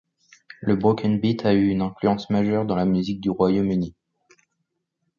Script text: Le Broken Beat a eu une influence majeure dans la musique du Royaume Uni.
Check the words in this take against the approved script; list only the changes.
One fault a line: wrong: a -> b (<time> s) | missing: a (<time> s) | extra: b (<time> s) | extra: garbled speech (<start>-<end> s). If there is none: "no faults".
no faults